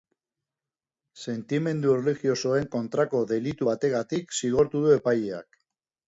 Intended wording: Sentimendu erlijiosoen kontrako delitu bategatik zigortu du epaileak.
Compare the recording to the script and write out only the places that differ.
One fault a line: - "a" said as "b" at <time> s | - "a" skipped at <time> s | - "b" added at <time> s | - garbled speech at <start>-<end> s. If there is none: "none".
none